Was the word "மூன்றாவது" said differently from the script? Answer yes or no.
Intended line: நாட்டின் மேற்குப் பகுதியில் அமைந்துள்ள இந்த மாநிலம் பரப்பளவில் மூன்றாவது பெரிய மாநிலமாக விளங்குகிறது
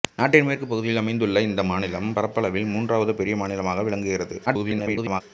no